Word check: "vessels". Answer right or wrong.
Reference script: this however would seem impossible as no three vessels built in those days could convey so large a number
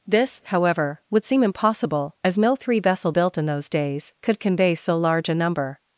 wrong